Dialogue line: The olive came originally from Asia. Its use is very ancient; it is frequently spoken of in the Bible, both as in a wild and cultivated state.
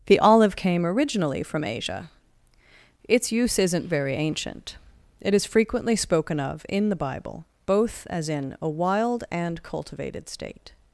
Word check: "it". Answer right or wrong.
right